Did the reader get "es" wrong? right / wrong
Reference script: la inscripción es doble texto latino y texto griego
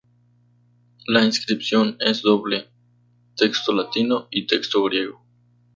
right